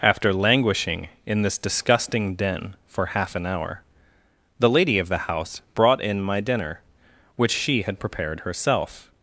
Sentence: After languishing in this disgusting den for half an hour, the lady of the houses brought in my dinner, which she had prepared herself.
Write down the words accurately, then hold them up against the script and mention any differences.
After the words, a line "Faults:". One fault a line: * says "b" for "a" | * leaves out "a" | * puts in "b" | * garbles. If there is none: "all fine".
After languishing in this disgusting den for half an hour, the lady of the house brought in my dinner, which she had prepared herself.
Faults:
* says "house" for "houses"